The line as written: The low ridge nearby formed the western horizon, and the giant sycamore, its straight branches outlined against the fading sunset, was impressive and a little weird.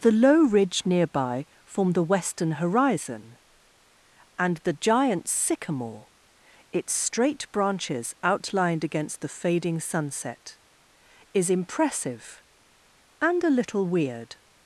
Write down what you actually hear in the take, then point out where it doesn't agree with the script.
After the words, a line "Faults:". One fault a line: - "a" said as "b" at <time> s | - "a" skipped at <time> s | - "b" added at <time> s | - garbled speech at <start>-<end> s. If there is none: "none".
The low ridge nearby formed the western horizon, and the giant sycamore, its straight branches outlined against the fading sunset, is impressive and a little weird.
Faults:
- "was" said as "is" at 11.3 s